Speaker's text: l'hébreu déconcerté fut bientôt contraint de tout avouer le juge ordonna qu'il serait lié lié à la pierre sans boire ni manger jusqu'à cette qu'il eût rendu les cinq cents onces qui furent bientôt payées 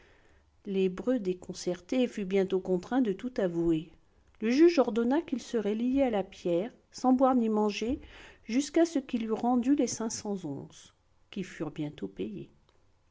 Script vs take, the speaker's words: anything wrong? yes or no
yes